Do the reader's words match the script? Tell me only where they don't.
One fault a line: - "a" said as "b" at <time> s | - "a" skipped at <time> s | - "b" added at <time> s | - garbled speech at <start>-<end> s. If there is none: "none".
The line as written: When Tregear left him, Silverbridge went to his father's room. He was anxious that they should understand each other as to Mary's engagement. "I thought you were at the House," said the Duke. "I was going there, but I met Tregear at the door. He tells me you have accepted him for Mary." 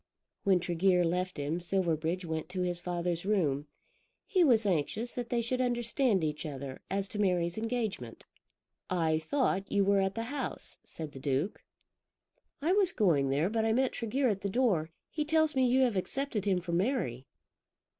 none